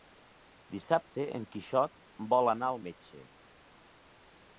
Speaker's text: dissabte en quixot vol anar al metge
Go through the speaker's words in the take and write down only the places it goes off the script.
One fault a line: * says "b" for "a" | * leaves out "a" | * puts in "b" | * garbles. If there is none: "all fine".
all fine